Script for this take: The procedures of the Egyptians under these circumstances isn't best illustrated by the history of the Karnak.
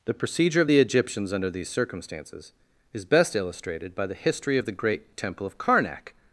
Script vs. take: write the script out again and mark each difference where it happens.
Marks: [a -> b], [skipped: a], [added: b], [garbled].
The [procedures -> procedure] of the Egyptians under these circumstances [isn't -> is] best illustrated by the history of the [added: great temple of] Karnak.